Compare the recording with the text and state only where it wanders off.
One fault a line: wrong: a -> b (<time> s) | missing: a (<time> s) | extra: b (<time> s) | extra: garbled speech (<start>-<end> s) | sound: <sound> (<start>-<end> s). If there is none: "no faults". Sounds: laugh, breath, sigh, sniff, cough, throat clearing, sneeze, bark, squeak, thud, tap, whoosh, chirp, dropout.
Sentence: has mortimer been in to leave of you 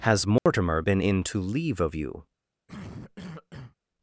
sound: dropout (0.4-0.5 s)
sound: cough (2.7-3.8 s)